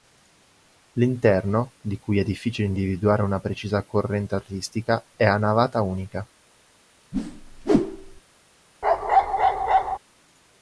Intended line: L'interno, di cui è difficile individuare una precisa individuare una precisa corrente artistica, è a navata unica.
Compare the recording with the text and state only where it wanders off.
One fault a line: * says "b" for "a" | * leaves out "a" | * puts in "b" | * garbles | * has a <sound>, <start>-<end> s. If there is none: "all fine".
* leaves out "individuare una precisa"
* has a whoosh, 7.1-8.2 s
* has a bark, 8.8-10.0 s